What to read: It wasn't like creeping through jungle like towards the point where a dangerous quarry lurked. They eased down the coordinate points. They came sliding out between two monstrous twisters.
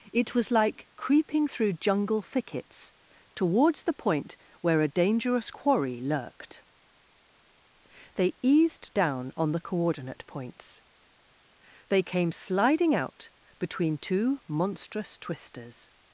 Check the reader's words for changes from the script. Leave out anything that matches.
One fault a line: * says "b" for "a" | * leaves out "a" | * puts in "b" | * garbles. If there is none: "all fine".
* says "was" for "wasn't"
* says "thickets" for "like"
* puts in "on"